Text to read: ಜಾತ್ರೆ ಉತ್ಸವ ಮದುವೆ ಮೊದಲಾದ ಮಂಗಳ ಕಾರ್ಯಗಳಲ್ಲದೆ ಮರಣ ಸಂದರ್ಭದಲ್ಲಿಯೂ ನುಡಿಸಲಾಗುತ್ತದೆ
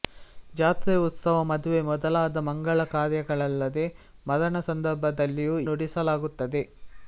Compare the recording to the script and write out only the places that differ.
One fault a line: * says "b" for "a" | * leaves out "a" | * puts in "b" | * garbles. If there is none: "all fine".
all fine